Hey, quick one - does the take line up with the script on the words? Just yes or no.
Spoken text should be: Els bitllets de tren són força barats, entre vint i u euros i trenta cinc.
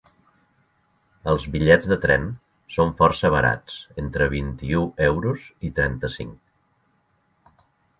yes